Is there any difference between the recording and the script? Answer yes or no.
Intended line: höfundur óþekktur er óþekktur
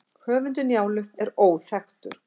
yes